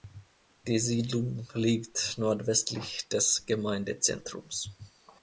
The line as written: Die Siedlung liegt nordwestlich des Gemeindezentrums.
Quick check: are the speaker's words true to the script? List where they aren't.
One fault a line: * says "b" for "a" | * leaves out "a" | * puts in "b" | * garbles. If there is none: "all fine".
all fine